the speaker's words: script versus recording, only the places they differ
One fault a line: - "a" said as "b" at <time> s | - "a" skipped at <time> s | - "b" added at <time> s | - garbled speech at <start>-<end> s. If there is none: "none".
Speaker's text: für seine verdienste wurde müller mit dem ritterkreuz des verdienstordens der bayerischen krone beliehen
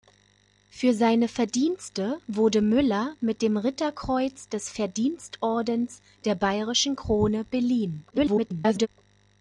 - garbled speech at 8.1-8.9 s